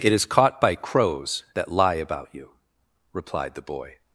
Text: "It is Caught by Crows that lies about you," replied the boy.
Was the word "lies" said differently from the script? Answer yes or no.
yes